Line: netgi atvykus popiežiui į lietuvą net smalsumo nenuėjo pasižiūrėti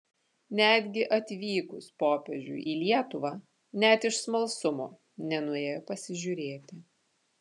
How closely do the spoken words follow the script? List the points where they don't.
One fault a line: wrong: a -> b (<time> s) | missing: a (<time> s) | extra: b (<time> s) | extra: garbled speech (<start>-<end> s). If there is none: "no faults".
extra: iš (4.1 s)